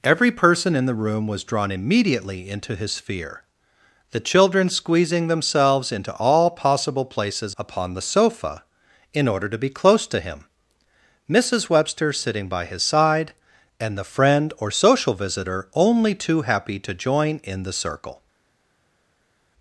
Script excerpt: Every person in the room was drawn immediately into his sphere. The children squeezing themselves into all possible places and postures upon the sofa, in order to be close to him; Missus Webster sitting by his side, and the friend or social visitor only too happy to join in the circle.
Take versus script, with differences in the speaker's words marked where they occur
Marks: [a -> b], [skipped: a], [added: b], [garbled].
Every person in the room was drawn immediately into his sphere. The children squeezing themselves into all possible places [skipped: and postures] upon the sofa, in order to be close to him; Missus Webster sitting by his side, and the friend or social visitor only too happy to join in the circle.